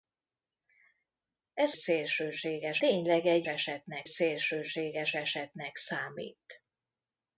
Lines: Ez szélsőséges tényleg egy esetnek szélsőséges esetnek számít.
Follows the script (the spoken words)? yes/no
yes